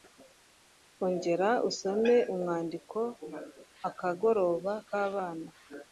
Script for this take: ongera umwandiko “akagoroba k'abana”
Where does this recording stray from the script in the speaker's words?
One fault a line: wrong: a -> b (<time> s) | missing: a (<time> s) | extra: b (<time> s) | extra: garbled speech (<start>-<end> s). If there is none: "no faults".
extra: usome (1.7 s)